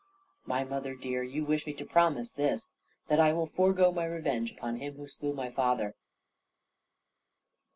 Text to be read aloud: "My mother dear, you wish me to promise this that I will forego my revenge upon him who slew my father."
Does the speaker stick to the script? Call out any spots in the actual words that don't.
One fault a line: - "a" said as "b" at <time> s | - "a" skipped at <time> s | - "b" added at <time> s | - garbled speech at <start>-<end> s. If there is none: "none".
none